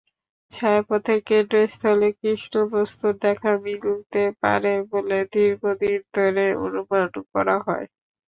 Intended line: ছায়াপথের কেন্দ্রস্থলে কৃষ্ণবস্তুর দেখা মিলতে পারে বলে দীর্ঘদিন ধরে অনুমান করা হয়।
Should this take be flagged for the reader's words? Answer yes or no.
no